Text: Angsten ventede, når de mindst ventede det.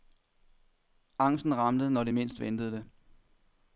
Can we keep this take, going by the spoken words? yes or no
no